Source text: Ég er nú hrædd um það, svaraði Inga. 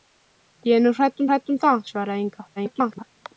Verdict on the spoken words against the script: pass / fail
fail